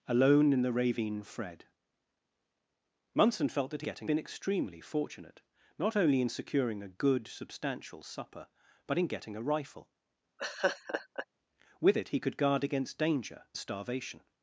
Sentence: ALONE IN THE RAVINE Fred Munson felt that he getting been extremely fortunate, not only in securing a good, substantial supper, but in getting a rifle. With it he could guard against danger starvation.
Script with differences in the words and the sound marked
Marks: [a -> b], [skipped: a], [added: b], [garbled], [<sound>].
ALONE IN THE RAVINE Fred Munson felt that he getting been extremely fortunate, not only in securing a good, substantial supper, but in getting a rifle. [laugh] With it he could guard against danger starvation.